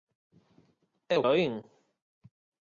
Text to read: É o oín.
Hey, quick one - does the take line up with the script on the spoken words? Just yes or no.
yes